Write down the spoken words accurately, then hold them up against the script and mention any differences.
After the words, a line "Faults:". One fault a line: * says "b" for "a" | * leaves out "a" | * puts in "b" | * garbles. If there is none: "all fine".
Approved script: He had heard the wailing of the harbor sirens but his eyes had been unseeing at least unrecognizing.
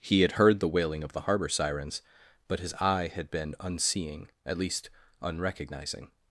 He had heard the wailing of the harbor sirens but his eye had been unseeing at least unrecognizing.
Faults:
* says "eye" for "eyes"